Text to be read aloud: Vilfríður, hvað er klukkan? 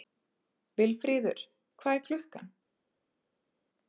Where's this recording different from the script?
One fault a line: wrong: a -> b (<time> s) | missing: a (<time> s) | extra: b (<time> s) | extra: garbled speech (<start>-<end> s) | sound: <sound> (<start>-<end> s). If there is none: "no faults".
no faults